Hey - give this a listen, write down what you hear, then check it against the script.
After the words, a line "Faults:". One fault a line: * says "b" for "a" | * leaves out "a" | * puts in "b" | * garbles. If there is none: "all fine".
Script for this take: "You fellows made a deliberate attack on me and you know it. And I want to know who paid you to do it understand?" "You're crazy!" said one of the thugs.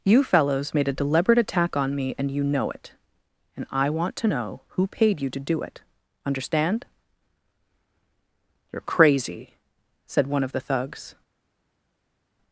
"You fellows made a deliberate attack on me and you know it. And I want to know who paid you to do it understand?" "You're crazy!" said one of the thugs.
Faults:
all fine